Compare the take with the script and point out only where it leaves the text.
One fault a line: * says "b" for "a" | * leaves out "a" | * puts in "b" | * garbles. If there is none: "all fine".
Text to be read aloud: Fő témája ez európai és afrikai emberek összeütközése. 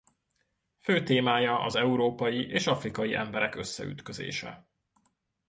* says "az" for "ez"